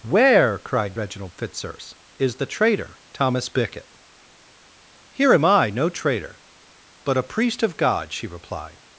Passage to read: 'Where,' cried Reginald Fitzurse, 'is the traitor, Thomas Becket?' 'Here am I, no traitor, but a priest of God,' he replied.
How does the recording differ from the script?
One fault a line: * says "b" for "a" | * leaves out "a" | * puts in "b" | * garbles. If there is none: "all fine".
* says "she" for "he"